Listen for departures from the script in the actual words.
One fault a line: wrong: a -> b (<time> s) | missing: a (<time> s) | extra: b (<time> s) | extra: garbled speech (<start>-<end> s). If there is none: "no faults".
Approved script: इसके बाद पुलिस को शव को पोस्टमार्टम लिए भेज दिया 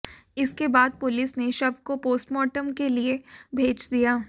wrong: को -> ने (1.4 s)
extra: के (2.7 s)